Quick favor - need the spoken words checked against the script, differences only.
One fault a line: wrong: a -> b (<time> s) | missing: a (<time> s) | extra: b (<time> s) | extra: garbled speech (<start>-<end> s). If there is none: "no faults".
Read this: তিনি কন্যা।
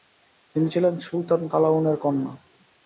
extra: ছিলেন সুলতান কালাউনের (0.7 s)